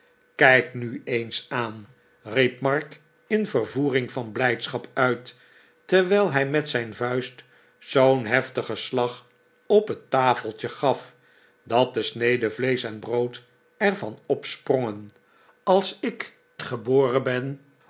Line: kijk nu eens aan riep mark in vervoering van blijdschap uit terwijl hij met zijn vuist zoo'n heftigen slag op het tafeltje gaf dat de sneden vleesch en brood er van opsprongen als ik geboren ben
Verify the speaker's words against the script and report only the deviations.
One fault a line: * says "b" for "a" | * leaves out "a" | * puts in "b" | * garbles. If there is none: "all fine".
all fine